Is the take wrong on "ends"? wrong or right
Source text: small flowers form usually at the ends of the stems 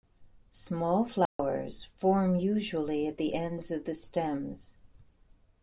right